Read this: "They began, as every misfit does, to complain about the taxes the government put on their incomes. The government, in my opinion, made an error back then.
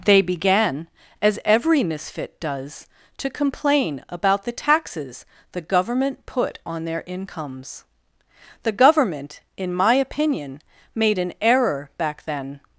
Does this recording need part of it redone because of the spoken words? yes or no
no